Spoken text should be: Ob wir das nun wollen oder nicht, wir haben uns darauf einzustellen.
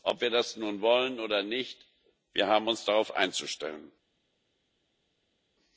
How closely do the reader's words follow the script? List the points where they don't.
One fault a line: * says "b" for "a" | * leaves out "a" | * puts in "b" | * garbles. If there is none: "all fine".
all fine